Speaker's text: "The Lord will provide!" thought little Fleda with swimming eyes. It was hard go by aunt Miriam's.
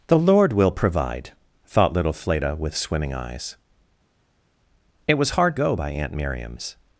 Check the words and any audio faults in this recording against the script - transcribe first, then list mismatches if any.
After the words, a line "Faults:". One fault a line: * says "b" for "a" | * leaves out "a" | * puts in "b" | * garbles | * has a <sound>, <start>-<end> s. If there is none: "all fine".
"The Lord will provide!" thought little Fleda with swimming eyes. It was hard go by aunt Miriam's.
Faults:
all fine